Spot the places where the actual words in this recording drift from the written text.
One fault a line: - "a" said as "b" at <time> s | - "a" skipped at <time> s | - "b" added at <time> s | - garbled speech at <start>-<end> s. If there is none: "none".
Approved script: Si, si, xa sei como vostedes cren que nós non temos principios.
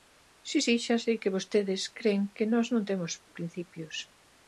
- "como" said as "que" at 1.2 s